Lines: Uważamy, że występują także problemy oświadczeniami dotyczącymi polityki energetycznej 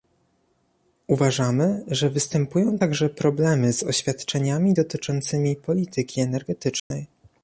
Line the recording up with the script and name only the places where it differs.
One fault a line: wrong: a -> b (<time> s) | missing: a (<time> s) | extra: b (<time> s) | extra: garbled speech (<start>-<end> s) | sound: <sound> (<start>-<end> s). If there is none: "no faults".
extra: z (3.7 s)
sound: dropout (6.8-6.9 s)